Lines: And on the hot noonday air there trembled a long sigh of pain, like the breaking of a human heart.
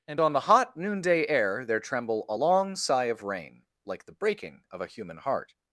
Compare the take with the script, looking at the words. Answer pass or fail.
fail